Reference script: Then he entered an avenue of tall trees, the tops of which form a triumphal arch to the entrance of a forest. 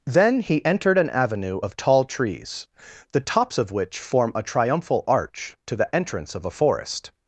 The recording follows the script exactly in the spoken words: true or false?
true